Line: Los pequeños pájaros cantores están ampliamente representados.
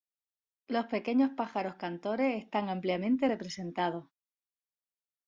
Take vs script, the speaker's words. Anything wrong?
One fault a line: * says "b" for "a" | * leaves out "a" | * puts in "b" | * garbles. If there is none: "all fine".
all fine